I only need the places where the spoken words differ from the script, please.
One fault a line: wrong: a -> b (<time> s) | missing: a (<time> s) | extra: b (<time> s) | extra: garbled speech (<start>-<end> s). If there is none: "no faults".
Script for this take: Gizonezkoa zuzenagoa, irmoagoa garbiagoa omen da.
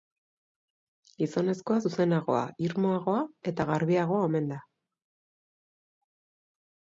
extra: eta (3.5 s)